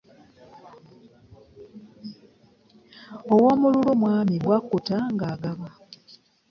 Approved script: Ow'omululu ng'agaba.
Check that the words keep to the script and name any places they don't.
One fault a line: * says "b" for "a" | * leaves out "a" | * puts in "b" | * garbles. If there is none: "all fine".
* puts in "mwami bwakutta"